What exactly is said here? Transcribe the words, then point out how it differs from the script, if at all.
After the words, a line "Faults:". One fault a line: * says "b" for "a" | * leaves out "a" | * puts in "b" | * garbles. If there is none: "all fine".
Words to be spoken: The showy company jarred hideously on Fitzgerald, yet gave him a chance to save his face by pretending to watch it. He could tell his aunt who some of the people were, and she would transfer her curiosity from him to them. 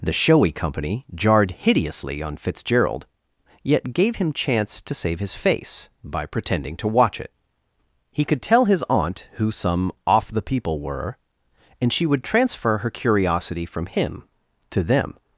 The showy company jarred hideously on Fitzgerald, yet gave him chance to save his face by pretending to watch it. He could tell his aunt who some off the people were, and she would transfer her curiosity from him to them.
Faults:
* leaves out "a"
* says "off" for "of"